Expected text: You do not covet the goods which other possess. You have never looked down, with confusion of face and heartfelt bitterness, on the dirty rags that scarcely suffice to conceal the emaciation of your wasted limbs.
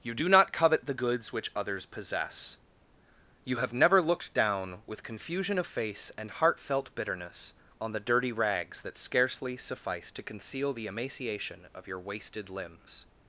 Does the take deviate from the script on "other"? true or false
true